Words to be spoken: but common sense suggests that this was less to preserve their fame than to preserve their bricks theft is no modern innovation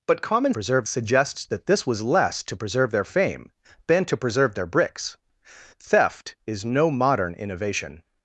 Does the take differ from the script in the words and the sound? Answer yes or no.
yes